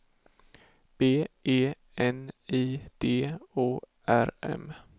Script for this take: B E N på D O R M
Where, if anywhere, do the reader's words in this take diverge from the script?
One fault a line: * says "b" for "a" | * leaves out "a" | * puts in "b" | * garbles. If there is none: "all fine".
* says "I" for "på"